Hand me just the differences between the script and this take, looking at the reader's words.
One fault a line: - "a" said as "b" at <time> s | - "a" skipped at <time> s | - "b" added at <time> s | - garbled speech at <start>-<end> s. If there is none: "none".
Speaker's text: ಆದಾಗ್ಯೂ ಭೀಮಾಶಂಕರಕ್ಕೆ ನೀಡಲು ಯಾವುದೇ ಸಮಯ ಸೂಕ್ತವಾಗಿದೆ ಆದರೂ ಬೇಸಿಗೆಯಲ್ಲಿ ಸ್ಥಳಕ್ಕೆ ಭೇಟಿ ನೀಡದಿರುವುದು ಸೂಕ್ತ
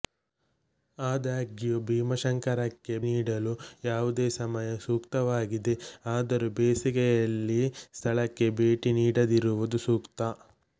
none